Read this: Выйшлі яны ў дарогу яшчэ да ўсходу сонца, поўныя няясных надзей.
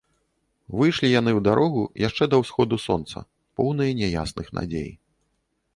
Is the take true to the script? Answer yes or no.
yes